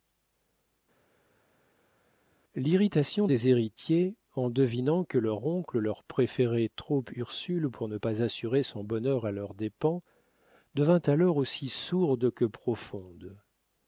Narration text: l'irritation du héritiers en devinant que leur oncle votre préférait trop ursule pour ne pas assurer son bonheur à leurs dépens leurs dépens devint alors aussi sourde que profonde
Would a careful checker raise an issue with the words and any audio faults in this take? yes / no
yes